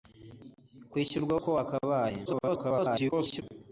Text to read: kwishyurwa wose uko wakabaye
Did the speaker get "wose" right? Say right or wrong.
wrong